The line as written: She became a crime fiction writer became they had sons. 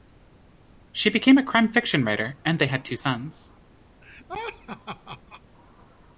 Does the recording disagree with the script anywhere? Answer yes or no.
yes